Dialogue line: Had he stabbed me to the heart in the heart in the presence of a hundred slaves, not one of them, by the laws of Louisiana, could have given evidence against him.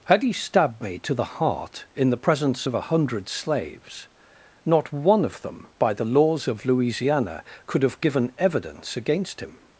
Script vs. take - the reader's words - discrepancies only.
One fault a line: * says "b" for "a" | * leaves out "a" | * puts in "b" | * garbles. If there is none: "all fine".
* leaves out "heart in the"